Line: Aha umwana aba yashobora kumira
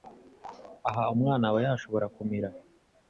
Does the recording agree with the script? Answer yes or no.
yes